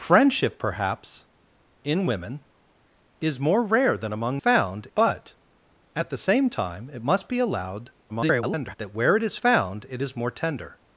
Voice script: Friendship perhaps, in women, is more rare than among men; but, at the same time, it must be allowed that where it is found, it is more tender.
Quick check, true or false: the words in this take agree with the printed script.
false